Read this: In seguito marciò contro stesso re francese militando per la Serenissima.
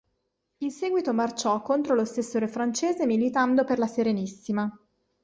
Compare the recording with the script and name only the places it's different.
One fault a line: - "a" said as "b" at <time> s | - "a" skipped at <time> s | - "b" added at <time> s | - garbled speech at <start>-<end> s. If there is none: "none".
- "lo" added at 1.9 s